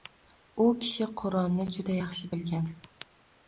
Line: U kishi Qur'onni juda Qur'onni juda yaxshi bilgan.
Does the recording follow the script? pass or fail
fail